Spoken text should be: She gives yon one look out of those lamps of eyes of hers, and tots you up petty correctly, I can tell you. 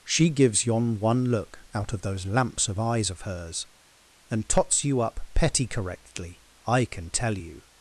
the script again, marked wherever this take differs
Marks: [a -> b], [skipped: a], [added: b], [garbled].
She gives yon one look out of those lamps of eyes of hers, and tots you up petty correctly, I can tell you.